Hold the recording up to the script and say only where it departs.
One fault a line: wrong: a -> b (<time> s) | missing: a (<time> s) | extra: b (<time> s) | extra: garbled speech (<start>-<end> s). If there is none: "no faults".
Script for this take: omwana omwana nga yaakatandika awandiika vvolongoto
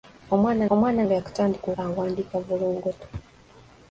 no faults